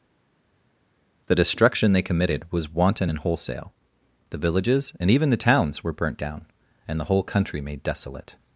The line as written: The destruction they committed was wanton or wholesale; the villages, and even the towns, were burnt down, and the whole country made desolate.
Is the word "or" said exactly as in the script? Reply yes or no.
no